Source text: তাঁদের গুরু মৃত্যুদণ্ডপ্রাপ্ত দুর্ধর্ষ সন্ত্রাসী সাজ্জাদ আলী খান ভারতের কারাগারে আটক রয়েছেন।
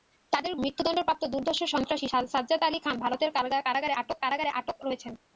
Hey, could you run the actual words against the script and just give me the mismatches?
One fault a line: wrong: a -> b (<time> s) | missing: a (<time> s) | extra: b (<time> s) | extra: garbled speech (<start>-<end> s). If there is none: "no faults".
missing: গুরু (0.5 s)
extra: কারাগারে আটক (4.2 s)